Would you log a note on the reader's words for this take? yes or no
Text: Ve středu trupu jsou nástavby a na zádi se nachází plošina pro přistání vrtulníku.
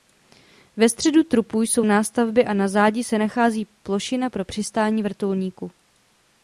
no